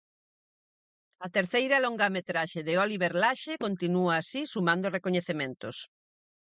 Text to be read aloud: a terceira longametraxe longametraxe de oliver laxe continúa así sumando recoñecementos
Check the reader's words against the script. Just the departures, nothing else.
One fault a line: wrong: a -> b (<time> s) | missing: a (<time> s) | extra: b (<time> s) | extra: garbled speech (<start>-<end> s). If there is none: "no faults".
missing: longametraxe (2.6 s)